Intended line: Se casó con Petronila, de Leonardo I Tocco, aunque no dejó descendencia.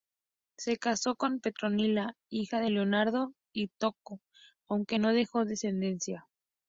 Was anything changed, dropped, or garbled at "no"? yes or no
no